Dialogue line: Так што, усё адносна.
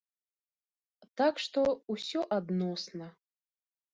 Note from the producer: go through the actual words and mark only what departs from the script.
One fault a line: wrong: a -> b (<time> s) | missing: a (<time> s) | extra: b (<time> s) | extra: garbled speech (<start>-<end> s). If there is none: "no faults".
no faults